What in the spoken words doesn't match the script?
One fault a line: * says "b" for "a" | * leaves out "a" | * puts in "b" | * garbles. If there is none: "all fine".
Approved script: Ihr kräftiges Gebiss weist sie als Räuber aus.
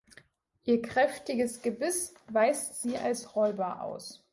all fine